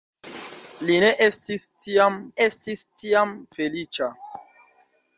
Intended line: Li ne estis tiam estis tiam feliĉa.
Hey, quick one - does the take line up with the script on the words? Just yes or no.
yes